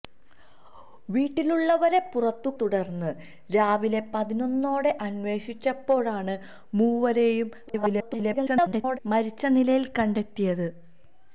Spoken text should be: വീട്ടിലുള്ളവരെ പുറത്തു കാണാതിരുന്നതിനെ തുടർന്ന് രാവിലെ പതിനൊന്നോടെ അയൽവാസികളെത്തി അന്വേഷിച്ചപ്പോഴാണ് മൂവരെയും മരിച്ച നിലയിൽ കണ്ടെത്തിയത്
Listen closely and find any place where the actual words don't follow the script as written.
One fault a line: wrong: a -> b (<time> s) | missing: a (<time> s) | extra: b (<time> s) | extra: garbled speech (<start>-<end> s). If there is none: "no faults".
missing: കാണാതിരുന്നതിനെ (2.5 s)
missing: അയൽവാസികളെത്തി (4.9 s)
extra: garbled speech (7.7-9.0 s)